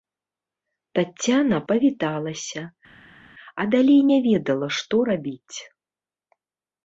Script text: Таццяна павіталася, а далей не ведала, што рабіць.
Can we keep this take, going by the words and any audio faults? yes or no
yes